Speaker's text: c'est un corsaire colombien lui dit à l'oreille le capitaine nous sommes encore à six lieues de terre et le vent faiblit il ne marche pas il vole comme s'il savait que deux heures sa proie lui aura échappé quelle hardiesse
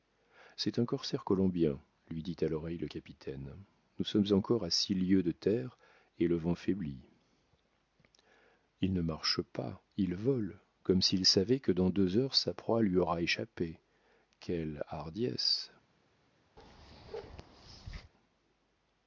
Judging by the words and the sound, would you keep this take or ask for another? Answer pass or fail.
fail